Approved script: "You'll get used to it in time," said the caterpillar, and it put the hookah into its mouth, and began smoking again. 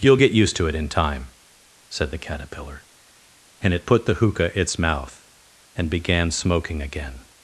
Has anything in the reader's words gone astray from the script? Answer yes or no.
yes